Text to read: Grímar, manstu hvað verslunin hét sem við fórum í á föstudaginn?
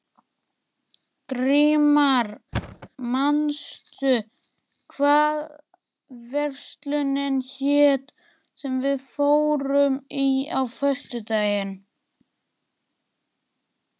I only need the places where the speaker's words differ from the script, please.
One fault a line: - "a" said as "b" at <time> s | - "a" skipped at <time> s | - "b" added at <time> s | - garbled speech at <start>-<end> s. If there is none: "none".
none